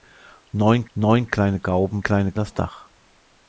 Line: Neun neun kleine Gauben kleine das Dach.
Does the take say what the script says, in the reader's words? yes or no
yes